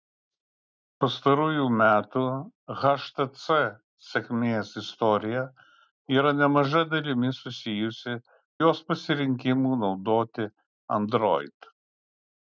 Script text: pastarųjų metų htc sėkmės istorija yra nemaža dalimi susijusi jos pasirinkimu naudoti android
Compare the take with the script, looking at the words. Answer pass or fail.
pass